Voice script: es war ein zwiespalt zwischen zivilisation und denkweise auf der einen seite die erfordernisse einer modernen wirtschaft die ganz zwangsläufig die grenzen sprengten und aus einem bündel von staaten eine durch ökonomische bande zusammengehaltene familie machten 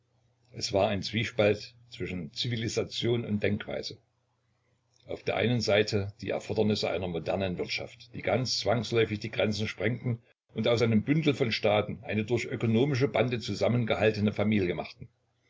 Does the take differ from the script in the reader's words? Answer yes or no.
no